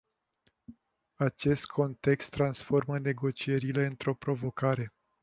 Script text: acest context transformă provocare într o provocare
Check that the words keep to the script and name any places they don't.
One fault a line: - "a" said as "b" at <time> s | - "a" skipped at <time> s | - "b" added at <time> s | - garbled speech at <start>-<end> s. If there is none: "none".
- "provocare" said as "negocierile" at 3.0 s